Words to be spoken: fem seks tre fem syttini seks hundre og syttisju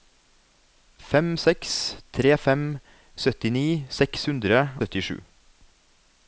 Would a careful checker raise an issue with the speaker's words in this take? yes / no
yes